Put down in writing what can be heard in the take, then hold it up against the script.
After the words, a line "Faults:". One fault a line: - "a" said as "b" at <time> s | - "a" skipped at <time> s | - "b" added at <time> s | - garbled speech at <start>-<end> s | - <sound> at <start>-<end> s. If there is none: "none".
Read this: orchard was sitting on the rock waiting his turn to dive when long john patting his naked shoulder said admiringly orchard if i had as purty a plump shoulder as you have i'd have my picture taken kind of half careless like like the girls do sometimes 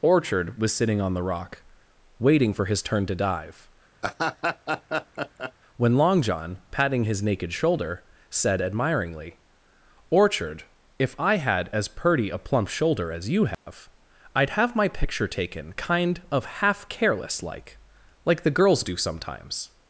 orchard was sitting on the rock waiting for his turn to dive when long john patting his naked shoulder said admiringly orchard if i had as purty a plump shoulder as you have i'd have my picture taken kind of half careless like like the girls do sometimes
Faults:
- "for" added at 2.5 s
- laugh at 4.0-5.5 s
- dropout at 13.5-13.7 s